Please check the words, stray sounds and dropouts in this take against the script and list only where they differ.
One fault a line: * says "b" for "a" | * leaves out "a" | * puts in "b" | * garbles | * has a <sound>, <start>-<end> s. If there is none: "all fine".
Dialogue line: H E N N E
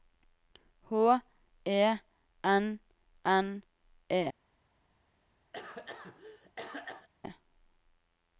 * has a cough, 5.5-7.1 s